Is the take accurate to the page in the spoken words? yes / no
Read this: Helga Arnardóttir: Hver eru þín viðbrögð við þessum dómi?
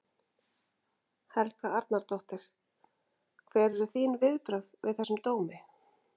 yes